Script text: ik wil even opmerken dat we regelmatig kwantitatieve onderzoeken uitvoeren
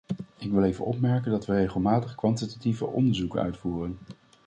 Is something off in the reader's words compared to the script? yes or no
no